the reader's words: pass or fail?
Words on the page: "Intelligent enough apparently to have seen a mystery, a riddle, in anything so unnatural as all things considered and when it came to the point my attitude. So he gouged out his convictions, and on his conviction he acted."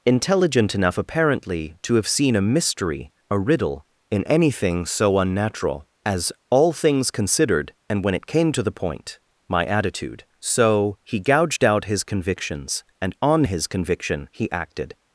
pass